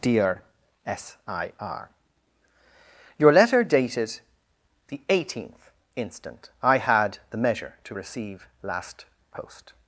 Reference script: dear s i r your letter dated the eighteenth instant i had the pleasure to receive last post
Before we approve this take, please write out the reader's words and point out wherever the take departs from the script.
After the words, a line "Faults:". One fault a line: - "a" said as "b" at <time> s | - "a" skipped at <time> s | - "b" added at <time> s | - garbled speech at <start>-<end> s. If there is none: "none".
dear s i r your letter dated the eighteenth instant i had the measure to receive last post
Faults:
- "pleasure" said as "measure" at 7.4 s